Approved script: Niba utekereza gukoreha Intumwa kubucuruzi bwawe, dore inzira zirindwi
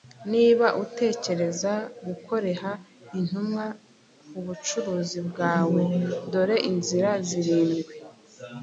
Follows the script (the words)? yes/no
yes